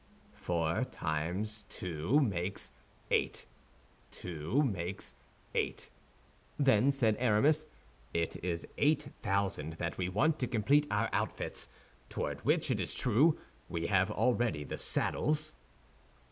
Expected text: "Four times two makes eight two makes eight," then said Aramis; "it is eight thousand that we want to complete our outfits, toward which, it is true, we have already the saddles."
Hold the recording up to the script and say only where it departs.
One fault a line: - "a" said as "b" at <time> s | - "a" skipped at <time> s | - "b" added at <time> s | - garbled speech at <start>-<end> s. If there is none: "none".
none